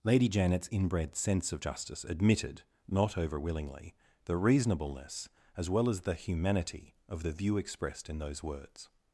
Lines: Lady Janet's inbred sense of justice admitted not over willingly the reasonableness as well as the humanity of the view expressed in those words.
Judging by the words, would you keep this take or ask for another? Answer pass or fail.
pass